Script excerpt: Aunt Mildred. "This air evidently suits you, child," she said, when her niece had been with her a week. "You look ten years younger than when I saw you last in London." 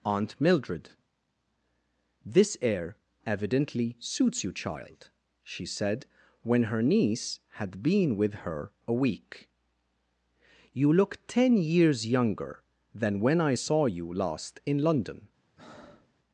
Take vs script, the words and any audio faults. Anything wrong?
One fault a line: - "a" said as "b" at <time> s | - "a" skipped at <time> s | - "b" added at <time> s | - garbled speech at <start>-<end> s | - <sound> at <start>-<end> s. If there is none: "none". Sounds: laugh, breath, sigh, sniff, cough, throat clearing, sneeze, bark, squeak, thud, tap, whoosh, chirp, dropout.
- breath at 15.6-16.1 s